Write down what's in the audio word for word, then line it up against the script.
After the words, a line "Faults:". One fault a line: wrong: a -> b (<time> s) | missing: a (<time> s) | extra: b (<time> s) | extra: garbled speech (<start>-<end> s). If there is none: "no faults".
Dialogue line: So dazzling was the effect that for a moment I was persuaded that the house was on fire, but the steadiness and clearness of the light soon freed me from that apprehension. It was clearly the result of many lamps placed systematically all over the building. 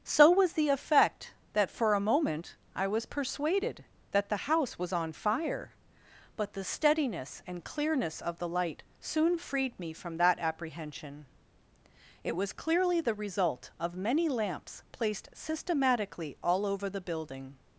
So was the effect that for a moment I was persuaded that the house was on fire, but the steadiness and clearness of the light soon freed me from that apprehension. It was clearly the result of many lamps placed systematically all over the building.
Faults:
missing: dazzling (0.3 s)